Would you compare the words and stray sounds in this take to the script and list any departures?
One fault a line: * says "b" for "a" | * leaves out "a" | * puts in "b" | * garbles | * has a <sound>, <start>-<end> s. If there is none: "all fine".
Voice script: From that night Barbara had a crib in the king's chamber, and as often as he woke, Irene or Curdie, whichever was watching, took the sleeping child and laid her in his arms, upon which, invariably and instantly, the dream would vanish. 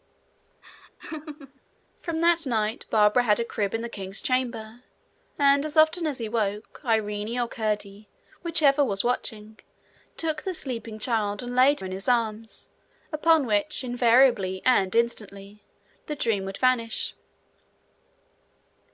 * has a laugh, 0.6-1.6 s
* leaves out "her"